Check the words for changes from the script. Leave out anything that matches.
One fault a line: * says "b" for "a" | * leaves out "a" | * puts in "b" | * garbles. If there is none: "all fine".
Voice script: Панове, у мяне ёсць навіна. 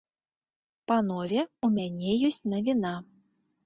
all fine